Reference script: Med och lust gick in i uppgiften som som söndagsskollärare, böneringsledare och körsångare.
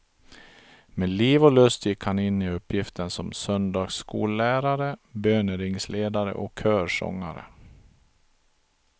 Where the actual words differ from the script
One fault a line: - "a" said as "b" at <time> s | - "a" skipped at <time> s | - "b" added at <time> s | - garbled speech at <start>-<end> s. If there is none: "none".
- "liv" added at 1.1 s
- "han" added at 2.0 s
- "som" skipped at 3.3 s